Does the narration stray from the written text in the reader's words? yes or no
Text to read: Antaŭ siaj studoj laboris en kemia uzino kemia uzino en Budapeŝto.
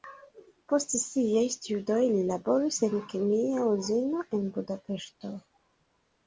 yes